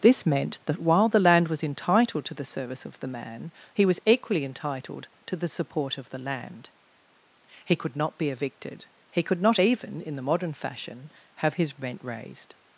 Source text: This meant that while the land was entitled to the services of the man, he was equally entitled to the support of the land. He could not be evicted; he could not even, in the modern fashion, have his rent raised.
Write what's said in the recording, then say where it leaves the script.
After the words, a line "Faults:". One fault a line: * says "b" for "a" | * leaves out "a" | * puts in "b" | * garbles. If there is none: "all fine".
This meant that while the land was entitled to the service of the man, he was equally entitled to the support of the land. He could not be evicted; he could not even, in the modern fashion, have his rent raised.
Faults:
* says "service" for "services"